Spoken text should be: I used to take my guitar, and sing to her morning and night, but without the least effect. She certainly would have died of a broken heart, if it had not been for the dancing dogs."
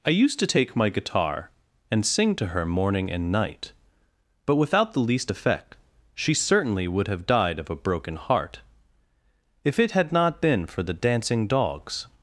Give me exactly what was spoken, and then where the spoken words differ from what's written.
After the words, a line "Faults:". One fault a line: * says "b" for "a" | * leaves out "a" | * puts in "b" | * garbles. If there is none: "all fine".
I used to take my guitar, and sing to her morning and night, but without the least effect. She certainly would have died of a broken heart, if it had not been for the dancing dogs."
Faults:
all fine